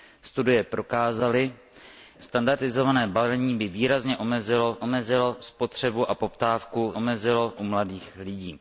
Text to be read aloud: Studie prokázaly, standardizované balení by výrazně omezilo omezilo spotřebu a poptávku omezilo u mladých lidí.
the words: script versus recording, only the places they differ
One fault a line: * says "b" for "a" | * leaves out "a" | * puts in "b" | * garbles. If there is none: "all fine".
all fine